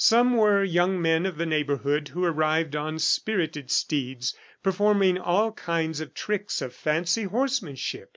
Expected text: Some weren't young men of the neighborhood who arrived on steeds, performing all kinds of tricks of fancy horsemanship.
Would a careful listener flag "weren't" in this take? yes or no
yes